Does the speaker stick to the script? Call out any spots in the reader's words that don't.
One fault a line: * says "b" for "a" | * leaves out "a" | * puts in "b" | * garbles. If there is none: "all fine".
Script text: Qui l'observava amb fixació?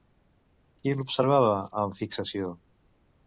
all fine